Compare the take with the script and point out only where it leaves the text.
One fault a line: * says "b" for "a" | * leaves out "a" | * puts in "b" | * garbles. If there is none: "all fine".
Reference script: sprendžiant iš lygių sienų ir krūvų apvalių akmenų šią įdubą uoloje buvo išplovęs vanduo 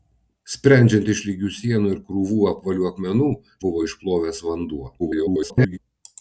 * leaves out "šią įdubą uoloje"
* garbles